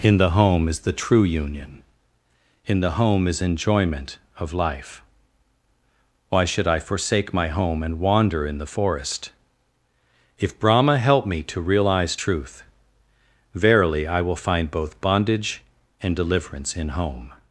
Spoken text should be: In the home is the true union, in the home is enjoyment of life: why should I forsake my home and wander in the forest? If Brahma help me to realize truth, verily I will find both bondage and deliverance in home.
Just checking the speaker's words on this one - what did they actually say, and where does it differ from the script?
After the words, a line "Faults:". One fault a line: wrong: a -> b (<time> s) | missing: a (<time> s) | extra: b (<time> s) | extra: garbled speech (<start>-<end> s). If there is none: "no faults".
In the home is the true union, in the home is enjoyment of life: why should I forsake my home and wander in the forest? If Brahma help me to realize truth, verily I will find both bondage and deliverance in home.
Faults:
no faults